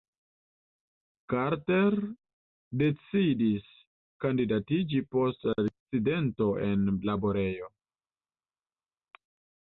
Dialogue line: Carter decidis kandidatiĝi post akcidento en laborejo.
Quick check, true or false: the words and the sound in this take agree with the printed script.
true